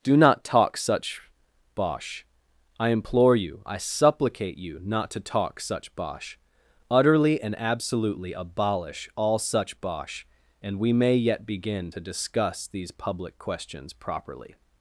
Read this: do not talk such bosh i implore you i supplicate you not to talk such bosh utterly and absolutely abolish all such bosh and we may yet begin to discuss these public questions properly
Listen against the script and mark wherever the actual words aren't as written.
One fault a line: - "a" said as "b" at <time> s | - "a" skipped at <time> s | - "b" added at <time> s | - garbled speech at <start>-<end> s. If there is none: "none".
none